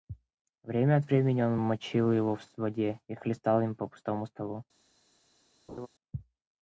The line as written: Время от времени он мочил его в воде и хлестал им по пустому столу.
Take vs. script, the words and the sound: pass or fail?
fail